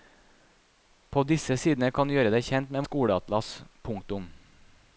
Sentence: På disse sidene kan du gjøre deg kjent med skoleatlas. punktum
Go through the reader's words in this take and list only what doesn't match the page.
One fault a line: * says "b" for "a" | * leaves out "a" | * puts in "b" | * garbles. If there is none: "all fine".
all fine